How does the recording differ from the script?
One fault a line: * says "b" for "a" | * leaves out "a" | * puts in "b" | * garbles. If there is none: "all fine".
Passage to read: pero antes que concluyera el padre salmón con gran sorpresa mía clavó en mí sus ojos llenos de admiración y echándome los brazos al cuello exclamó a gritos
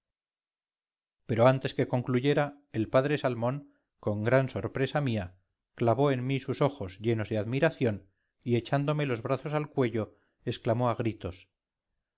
all fine